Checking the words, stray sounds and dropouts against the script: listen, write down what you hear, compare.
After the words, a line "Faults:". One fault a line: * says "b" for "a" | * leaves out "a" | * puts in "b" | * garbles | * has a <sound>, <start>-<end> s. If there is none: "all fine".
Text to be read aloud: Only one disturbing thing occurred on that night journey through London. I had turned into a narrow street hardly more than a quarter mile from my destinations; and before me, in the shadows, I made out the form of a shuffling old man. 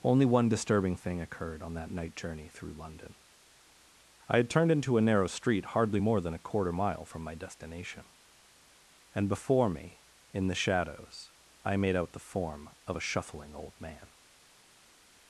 Only one disturbing thing occurred on that night journey through London. I had turned into a narrow street hardly more than a quarter mile from my destination; and before me, in the shadows, I made out the form of a shuffling old man.
Faults:
* says "destination" for "destinations"